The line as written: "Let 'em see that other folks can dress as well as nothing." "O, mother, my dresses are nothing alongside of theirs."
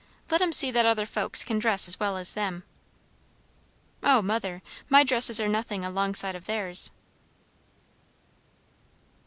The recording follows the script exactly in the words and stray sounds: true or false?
false